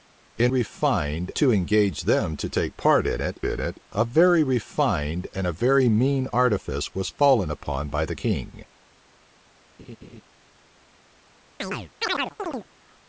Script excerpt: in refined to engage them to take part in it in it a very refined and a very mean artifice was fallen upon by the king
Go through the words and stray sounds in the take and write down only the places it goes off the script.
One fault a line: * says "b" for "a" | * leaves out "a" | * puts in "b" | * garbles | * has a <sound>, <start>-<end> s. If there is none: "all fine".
* has a laugh, 9.8-10.2 s
* has a chirp, 11.6-12.7 s